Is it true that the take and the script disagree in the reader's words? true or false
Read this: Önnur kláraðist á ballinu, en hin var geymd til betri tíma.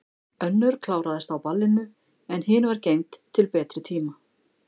false